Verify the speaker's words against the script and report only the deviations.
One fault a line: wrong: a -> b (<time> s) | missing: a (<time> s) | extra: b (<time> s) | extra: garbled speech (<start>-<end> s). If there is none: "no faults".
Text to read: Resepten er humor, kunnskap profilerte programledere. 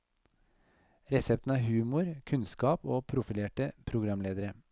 extra: og (2.9 s)